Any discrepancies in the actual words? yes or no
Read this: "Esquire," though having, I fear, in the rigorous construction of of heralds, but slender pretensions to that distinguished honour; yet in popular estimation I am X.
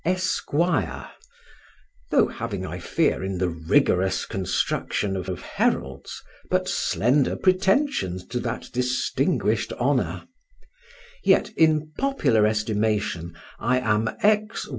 no